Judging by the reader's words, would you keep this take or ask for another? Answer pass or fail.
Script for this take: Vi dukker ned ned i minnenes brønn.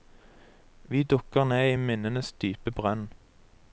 fail